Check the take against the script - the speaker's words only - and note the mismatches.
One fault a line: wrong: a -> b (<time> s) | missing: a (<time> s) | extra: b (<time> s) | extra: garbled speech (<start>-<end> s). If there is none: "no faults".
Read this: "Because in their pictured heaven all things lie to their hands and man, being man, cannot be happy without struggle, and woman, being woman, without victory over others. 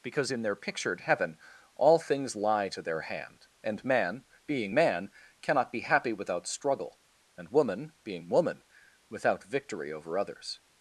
wrong: hands -> hand (3.0 s)